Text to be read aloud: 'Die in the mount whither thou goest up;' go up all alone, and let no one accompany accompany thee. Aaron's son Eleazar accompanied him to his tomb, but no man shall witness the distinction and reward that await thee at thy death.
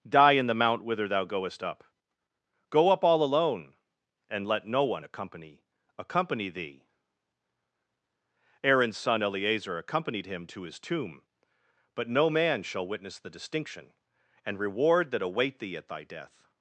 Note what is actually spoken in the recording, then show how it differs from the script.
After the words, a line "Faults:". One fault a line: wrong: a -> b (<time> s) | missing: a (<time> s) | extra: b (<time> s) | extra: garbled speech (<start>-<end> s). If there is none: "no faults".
'Die in the mount whither thou goest up;' go up all alone, and let no one accompany accompany thee. Aaron's son Eleazar accompanied him to his tomb, but no man shall witness the distinction and reward that await thee at thy death.
Faults:
no faults